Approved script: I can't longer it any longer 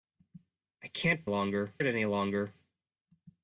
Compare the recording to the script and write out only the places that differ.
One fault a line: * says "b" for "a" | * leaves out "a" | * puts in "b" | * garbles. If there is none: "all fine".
all fine